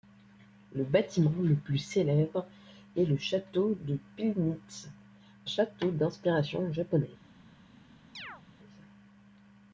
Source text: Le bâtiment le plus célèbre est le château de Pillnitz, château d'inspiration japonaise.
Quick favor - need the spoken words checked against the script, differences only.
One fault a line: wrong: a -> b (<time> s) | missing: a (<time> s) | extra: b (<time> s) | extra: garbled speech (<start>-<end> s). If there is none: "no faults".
no faults